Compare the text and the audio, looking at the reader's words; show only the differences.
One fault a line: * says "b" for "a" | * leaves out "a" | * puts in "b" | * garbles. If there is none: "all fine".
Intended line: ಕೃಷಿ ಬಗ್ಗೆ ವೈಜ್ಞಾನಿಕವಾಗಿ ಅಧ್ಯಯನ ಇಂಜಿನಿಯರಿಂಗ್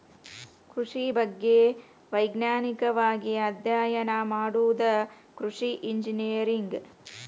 * puts in "ಮಾಡುದ ಕೃಷಿ"